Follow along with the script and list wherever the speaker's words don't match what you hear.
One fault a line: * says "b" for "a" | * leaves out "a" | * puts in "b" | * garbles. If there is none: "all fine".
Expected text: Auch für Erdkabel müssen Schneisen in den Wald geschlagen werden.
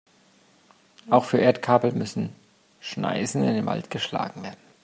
all fine